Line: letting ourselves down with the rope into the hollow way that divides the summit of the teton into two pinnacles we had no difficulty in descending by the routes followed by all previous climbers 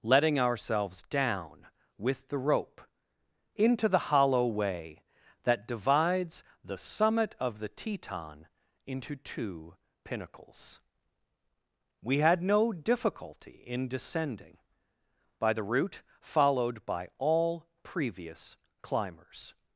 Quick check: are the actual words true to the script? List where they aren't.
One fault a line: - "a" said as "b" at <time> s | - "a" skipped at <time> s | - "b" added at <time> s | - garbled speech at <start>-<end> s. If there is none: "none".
- "routes" said as "route" at 15.6 s